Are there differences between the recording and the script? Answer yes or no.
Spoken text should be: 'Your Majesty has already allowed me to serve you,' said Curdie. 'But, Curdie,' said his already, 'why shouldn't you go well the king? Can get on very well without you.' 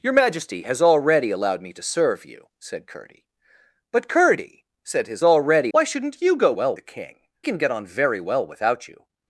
no